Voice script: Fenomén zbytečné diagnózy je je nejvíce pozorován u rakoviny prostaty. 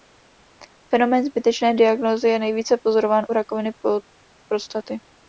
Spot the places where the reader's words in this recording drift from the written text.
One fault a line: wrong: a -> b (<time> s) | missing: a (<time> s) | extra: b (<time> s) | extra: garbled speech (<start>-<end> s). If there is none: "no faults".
missing: je (2.4 s)